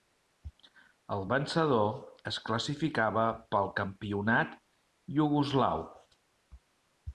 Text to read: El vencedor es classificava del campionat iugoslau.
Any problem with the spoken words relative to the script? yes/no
yes